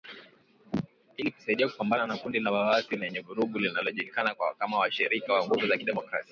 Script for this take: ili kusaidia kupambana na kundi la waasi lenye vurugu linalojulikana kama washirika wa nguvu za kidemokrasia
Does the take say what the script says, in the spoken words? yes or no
yes